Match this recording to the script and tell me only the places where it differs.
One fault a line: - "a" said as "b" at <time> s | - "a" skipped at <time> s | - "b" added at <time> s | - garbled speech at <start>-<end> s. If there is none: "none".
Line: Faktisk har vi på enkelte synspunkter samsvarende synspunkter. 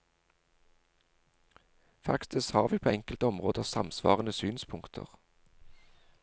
- "synspunkter" said as "områder" at 3.3 s